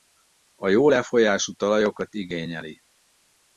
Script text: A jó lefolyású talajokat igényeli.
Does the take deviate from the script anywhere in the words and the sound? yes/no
no